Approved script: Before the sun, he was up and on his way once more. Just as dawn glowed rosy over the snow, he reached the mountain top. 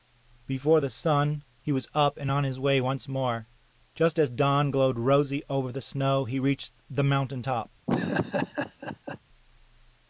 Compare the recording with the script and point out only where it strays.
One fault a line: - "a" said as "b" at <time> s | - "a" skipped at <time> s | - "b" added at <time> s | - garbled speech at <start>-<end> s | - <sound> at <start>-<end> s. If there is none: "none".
- laugh at 7.9-9.2 s